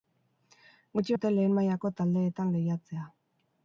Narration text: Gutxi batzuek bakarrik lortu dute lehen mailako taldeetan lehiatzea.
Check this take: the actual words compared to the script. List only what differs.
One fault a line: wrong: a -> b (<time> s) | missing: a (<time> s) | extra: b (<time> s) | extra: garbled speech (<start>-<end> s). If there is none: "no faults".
missing: batzuek bakarrik lortu (1.2 s)